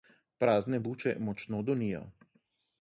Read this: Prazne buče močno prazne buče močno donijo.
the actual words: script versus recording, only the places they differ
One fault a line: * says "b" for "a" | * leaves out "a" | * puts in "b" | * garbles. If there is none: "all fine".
* leaves out "prazne buče močno"